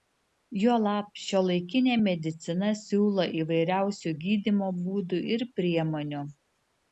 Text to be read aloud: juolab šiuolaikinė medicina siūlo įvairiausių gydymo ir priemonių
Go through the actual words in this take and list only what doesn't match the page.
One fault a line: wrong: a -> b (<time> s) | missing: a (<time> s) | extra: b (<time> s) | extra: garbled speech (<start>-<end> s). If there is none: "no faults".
extra: būdų (4.8 s)